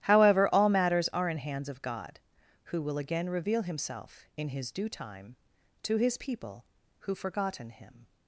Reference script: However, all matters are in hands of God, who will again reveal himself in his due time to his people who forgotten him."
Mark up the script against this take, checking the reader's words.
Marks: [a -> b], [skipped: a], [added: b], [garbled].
However, all matters are in hands of God, who will again reveal himself in his due time to his people who forgotten him."